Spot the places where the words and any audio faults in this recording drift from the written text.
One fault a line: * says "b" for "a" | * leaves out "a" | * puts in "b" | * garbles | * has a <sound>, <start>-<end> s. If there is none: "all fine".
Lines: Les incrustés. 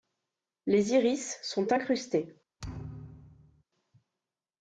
* puts in "iris sont"
* has a thud, 2.6-3.6 s